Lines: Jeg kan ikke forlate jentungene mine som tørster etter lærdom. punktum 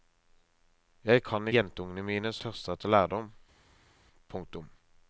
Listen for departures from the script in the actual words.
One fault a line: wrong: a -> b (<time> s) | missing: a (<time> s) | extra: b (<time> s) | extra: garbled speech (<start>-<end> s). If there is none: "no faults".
missing: ikke forlate (1.5 s)
missing: som (2.3 s)